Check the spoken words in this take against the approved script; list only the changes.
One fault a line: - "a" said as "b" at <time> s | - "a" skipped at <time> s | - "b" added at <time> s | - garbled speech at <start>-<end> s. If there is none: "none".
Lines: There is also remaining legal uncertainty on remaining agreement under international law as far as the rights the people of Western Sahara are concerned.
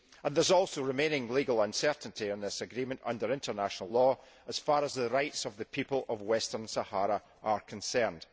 - "remaining" said as "this" at 2.4 s
- "of" added at 5.4 s